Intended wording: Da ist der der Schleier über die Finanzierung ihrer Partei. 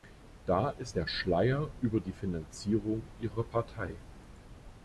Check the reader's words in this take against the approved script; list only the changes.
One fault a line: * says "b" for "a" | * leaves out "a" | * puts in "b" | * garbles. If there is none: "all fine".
* leaves out "der"